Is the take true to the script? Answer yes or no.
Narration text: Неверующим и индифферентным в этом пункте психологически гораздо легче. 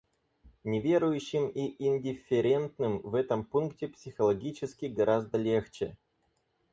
yes